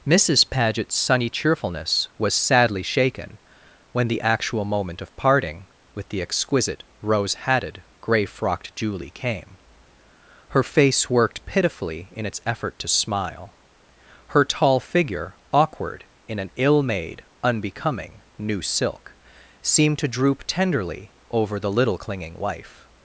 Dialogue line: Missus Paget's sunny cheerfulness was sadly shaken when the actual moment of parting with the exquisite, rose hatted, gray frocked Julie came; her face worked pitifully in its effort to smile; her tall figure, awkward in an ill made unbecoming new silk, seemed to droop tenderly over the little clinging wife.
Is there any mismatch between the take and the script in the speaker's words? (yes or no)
no